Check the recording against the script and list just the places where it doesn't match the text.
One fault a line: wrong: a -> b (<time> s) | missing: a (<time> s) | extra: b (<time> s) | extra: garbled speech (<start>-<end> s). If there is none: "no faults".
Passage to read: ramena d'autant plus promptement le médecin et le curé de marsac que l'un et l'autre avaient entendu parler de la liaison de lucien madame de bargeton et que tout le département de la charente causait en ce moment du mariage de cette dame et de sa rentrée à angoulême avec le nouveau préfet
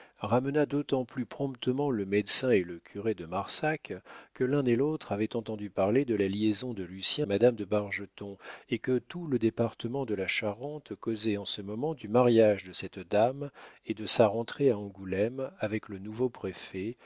no faults